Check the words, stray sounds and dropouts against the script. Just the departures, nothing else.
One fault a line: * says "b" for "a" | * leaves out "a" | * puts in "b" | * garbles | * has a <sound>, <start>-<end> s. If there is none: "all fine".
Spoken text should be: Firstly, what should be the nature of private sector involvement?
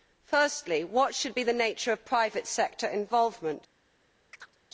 * has a chirp, 4.3-4.6 s